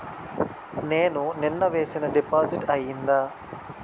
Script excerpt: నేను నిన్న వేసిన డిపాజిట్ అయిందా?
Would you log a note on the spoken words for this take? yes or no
no